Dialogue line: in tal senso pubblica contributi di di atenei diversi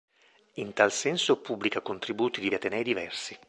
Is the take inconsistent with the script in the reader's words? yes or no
no